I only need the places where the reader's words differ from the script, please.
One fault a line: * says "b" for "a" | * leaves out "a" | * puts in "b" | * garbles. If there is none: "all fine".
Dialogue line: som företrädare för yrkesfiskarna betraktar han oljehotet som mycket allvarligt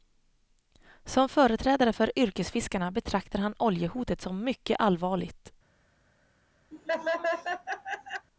all fine